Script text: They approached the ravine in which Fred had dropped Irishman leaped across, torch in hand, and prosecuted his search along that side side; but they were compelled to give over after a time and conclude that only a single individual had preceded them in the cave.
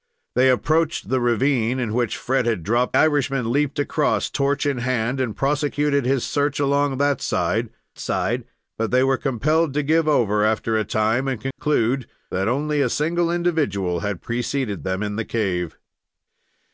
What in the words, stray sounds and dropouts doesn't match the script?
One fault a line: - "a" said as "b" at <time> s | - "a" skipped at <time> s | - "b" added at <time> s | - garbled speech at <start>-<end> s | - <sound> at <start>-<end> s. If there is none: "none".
- dropout at 11.5-11.6 s